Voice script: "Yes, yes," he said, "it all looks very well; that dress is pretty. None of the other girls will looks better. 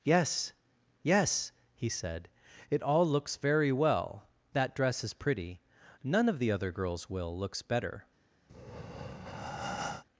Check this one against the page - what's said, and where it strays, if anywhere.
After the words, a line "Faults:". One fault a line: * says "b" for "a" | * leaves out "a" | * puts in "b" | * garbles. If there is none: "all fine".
"Yes, yes," he said, "it all looks very well; that dress is pretty. None of the other girls will looks better.
Faults:
all fine